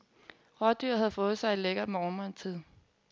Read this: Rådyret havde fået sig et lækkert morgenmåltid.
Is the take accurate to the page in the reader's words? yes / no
yes